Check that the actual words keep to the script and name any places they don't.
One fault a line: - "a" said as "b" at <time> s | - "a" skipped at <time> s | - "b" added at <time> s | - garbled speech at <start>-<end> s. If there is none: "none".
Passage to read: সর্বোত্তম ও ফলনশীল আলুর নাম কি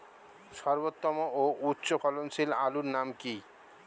- "উচ্চ" added at 1.7 s